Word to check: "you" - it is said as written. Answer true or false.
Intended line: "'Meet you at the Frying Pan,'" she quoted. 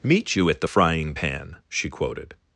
true